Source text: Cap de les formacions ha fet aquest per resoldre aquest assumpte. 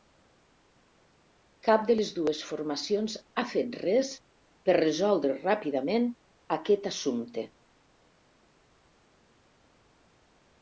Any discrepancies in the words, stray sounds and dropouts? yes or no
yes